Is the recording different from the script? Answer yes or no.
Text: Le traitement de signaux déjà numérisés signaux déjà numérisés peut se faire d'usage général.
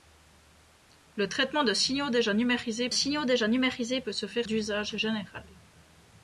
no